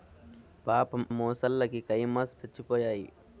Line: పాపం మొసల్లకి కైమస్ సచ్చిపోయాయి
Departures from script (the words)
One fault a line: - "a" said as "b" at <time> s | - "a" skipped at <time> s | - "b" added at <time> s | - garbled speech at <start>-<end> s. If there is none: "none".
none